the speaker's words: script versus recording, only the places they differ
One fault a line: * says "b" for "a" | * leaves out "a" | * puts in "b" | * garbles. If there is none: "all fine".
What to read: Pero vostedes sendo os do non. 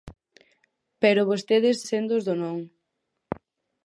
all fine